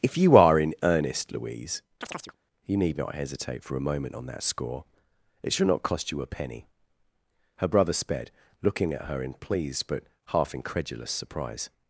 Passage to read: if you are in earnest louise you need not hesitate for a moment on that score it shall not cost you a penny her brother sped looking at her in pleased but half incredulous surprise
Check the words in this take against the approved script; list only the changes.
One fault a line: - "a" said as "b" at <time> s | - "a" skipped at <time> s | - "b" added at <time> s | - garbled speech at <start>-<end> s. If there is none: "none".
none